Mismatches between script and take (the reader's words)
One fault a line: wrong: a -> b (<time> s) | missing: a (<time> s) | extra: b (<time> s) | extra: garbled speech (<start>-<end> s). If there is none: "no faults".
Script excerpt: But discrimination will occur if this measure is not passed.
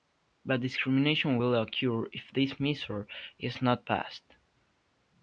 no faults